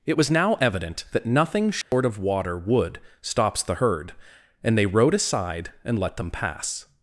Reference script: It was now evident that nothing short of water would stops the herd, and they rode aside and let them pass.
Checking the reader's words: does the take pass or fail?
pass